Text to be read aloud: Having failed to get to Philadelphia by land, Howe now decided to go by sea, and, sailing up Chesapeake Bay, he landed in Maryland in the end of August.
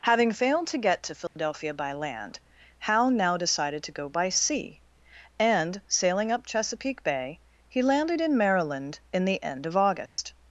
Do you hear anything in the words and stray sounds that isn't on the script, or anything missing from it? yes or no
yes